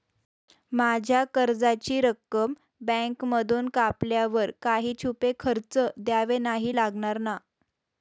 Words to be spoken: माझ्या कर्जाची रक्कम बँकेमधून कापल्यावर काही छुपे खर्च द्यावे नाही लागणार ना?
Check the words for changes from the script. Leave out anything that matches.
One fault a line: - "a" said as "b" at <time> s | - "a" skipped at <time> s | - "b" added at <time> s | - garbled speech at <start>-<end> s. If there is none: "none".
none